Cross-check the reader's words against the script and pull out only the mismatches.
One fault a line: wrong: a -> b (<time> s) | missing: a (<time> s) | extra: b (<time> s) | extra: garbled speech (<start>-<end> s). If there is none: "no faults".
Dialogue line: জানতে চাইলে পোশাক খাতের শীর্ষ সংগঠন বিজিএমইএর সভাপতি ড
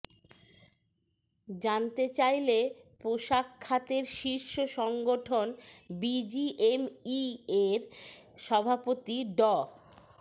no faults